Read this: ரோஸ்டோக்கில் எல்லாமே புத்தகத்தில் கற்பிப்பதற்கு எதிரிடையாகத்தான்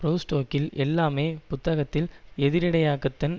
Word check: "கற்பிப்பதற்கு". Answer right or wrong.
wrong